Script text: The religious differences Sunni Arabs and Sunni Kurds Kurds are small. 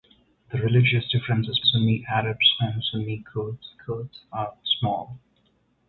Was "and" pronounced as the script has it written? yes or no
yes